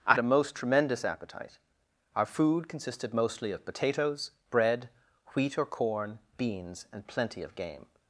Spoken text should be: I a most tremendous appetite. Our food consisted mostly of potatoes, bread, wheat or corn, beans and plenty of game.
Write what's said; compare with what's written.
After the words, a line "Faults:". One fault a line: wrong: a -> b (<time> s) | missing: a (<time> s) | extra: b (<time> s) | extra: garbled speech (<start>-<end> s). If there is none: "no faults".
I a most tremendous appetite. Our food consisted mostly of potatoes, bread, wheat or corn, beans and plenty of game.
Faults:
no faults